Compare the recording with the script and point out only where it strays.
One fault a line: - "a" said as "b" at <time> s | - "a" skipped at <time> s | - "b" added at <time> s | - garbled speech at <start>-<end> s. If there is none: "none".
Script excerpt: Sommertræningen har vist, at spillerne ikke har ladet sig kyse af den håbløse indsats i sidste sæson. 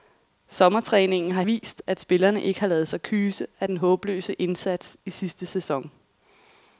none